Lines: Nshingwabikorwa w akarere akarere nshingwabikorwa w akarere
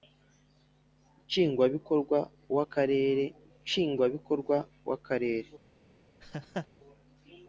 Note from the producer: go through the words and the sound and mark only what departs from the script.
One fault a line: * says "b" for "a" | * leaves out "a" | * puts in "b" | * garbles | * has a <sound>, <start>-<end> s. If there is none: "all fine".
* leaves out "akarere"
* has a laugh, 6.2-6.7 s